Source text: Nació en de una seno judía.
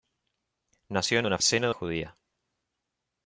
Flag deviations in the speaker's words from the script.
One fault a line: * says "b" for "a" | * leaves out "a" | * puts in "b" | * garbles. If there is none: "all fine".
all fine